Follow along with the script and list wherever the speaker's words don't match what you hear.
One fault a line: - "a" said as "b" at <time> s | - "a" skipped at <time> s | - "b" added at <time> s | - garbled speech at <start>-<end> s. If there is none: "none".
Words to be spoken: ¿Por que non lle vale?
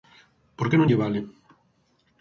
none